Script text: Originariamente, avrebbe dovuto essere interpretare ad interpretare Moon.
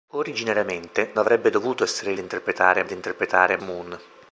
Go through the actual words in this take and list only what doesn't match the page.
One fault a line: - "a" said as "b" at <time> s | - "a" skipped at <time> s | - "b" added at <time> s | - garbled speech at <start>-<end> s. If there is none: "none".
none